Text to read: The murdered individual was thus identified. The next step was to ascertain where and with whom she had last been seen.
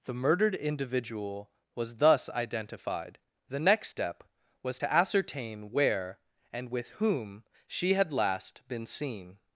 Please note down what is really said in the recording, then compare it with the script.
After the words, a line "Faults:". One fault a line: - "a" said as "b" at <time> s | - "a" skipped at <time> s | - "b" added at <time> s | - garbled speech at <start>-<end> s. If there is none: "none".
The murdered individual was thus identified. The next step was to ascertain where and with whom she had last been seen.
Faults:
none